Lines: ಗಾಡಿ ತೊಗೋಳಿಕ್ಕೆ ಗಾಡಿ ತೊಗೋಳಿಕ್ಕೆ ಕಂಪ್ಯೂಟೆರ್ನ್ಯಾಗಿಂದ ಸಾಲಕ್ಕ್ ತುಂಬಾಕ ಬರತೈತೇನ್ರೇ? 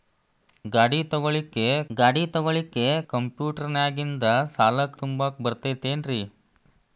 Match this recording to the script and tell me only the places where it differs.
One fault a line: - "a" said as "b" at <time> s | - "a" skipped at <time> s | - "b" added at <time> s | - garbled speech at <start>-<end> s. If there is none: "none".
none